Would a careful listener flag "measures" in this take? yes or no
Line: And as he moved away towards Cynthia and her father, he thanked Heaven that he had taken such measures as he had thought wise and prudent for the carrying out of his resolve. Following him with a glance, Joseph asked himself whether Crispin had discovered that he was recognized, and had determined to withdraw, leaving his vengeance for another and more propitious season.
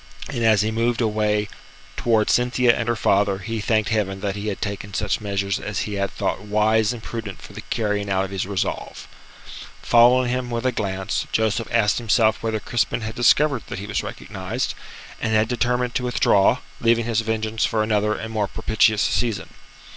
no